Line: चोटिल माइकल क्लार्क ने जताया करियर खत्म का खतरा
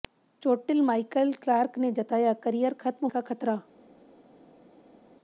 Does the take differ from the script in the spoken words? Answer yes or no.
no